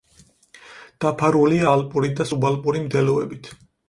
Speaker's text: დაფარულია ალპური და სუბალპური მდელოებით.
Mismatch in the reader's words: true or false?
false